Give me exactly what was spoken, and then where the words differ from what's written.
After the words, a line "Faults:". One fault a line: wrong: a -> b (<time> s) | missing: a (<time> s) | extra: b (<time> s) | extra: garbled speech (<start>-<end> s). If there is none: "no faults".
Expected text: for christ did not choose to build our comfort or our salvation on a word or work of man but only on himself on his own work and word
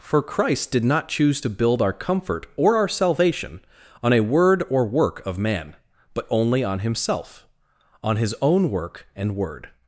for christ did not choose to build our comfort or our salvation on a word or work of man but only on himself on his own work and word
Faults:
no faults